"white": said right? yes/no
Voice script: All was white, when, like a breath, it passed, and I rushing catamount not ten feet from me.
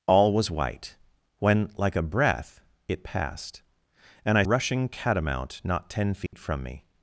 yes